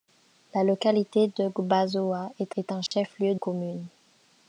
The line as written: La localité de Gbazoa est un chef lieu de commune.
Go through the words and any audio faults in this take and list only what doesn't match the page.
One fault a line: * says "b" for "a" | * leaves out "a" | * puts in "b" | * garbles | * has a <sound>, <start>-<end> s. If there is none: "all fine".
* puts in "est"
* has a dropout, 2.9-2.9 s
* leaves out "de"